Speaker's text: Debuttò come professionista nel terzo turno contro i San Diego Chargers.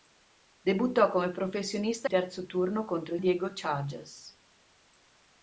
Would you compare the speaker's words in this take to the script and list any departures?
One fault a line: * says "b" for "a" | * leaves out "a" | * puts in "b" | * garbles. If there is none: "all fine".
* leaves out "nel"
* leaves out "San"